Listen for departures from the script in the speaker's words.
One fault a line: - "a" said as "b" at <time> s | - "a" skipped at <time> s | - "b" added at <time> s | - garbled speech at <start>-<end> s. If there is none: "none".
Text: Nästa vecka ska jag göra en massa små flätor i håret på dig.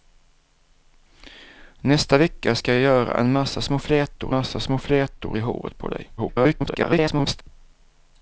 - "massa små flätor" added at 4.3 s
- garbled speech at 6.2-7.4 s